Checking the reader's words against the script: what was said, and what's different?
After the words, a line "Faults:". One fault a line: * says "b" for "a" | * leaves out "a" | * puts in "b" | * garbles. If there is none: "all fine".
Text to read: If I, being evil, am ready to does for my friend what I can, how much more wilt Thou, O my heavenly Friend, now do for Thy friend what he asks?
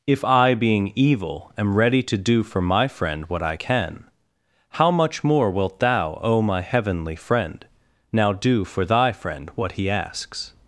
If I, being evil, am ready to do for my friend what I can, how much more wilt Thou, O my heavenly Friend, now do for Thy friend what he asks?
Faults:
* says "do" for "does"